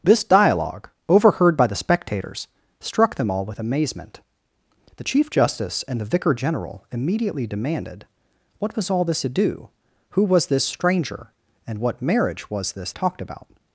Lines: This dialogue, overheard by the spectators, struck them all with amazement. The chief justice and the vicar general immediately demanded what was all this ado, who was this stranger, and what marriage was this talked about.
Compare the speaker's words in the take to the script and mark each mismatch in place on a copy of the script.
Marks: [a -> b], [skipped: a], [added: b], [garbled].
This dialogue, overheard by the spectators, struck them all with amazement. The chief justice and the vicar general immediately demanded what was all this ado, who was this stranger, and what marriage was this talked about.